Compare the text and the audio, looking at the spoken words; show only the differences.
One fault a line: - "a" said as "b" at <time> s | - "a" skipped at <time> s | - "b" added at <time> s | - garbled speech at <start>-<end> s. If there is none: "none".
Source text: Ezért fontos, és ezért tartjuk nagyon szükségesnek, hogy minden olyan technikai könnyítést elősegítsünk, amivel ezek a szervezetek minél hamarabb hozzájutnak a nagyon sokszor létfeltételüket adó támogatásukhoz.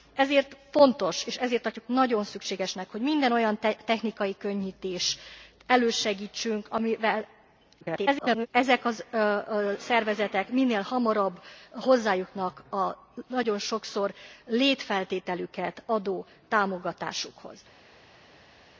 - garbled speech at 7.8-8.5 s